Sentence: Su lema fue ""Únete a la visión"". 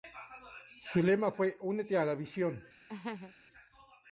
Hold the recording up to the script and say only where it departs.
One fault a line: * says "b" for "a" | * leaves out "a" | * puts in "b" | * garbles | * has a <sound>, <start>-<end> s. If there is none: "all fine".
* has a laugh, 2.9-3.3 s